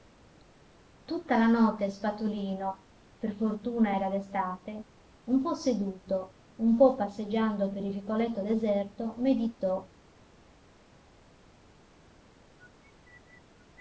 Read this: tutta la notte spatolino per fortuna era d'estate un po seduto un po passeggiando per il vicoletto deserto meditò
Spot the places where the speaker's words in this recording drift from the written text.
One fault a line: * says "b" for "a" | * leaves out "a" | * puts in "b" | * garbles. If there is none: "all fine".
all fine